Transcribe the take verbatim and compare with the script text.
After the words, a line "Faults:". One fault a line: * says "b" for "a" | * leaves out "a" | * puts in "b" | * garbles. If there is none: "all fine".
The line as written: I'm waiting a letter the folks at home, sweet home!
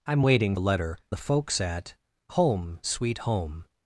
I'm waiting a letter the folks at home, sweet home!
Faults:
all fine